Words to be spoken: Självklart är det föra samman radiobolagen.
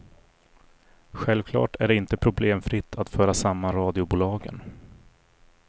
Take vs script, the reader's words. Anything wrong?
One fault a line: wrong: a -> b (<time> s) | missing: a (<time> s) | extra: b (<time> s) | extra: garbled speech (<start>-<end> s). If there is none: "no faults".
extra: inte problemfritt att (1.9 s)